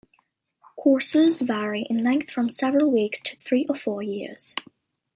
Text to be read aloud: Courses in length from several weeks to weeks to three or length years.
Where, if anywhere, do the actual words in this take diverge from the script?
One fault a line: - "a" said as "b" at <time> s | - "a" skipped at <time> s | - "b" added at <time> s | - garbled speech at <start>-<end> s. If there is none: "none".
- "vary" added at 1.4 s
- "weeks to" skipped at 3.4 s
- "length" said as "four" at 3.7 s